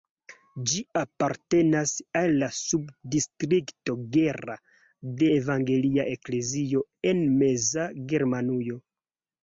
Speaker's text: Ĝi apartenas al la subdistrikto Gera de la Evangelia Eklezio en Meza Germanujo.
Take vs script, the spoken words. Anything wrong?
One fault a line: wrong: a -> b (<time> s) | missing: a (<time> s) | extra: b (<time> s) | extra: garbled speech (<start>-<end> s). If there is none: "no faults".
missing: la (5.3 s)